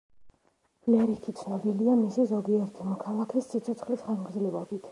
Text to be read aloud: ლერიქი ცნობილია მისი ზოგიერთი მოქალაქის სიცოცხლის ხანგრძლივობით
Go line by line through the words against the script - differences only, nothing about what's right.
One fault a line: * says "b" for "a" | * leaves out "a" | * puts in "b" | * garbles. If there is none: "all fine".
all fine